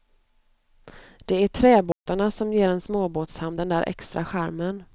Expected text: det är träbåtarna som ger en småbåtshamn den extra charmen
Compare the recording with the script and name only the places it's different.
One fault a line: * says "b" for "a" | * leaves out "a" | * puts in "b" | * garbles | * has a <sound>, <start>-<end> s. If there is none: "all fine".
* has a dropout, 1.9-2.1 s
* puts in "där"